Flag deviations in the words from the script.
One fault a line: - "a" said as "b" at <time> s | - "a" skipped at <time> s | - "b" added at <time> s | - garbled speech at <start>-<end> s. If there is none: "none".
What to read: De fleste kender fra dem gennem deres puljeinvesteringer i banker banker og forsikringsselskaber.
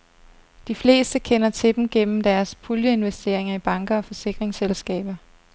- "fra" said as "til" at 1.5 s
- "banker" skipped at 4.0 s